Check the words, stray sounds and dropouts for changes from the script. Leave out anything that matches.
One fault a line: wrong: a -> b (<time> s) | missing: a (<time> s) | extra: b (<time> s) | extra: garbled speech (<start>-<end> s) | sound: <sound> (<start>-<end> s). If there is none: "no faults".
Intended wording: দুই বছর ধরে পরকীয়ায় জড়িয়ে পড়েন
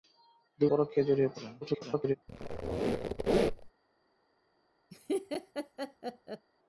missing: বছর ধরে (0.7 s)
extra: garbled speech (1.6-2.2 s)
sound: squeak (2.3-3.7 s)
sound: laugh (4.9-6.5 s)